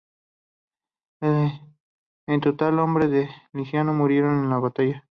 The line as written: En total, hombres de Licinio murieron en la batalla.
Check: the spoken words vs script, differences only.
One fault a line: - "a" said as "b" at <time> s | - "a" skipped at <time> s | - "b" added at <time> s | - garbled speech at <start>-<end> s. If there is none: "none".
none